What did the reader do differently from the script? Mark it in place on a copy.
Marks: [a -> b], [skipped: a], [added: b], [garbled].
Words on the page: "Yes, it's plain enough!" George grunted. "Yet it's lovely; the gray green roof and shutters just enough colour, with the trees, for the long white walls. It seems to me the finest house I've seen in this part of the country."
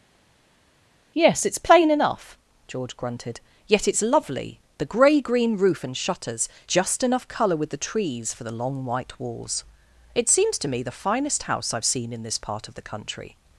"Yes, it's plain enough!" George grunted. "Yet it's lovely; the gray green roof and shutters just enough colour, with the trees, for the long white walls. It seems to me the finest house I've seen in this part of the country."